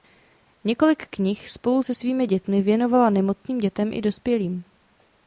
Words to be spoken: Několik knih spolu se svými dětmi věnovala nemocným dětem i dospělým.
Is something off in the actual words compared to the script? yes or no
no